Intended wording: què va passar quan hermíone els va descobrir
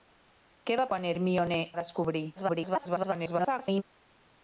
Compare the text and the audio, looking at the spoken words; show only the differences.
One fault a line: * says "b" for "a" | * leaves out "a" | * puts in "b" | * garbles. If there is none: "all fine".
* leaves out "passar"
* leaves out "els"
* garbles